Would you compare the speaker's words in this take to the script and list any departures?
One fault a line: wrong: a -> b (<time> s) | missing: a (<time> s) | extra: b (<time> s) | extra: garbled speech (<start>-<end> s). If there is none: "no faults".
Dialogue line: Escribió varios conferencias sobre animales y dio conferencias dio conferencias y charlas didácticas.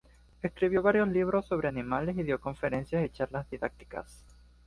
wrong: conferencias -> libros (1.1 s)
missing: dio conferencias (3.0 s)